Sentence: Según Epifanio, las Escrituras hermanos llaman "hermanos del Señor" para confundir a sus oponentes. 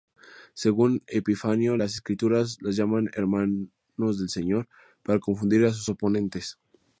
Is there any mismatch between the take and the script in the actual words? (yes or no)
yes